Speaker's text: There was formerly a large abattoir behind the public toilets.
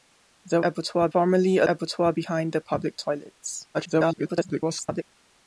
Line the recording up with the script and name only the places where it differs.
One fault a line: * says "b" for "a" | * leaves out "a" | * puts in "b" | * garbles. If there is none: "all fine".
* says "abattoir" for "was"
* leaves out "large"
* garbles